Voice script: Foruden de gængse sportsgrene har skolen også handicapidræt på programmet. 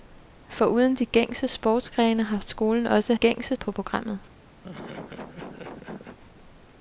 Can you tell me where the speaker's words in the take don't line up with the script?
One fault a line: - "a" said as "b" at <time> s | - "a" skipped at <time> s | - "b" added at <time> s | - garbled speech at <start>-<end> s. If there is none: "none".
- "handicapidræt" said as "gængse" at 3.1 s